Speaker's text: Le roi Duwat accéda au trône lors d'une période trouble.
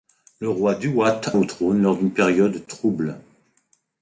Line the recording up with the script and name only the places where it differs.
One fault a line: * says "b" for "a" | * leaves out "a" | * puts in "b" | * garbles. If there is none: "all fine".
* leaves out "accéda"